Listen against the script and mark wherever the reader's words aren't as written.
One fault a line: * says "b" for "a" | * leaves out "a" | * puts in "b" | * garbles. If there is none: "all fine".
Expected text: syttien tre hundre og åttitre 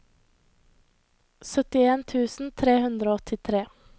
* puts in "tusen"